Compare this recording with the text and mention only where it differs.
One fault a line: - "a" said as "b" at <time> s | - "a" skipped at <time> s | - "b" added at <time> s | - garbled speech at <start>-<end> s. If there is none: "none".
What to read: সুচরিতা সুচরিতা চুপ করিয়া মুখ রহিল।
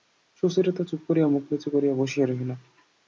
- "সুচরিতা" skipped at 0.8 s
- "নিচু করিয়া বসিয়া" added at 1.5 s